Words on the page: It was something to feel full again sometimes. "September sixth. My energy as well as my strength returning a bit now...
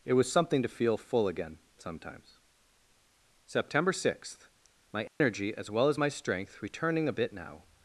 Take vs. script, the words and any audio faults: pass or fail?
fail